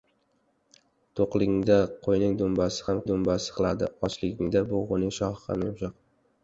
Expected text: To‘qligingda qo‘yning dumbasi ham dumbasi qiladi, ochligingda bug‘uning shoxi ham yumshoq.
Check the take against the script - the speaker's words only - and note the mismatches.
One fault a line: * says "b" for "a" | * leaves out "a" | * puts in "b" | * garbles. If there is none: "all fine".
all fine